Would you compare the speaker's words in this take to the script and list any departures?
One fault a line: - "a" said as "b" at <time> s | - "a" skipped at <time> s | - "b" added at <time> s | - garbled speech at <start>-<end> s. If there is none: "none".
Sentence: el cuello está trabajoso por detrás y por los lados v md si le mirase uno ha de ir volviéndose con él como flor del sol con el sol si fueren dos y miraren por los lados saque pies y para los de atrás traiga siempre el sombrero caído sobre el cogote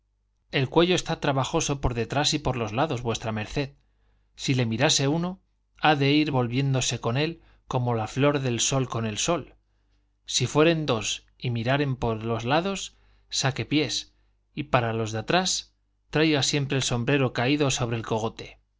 - "la" added at 7.9 s